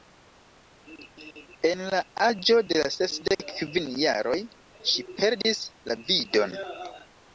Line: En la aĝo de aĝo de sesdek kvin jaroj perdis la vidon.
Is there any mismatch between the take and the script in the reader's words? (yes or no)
yes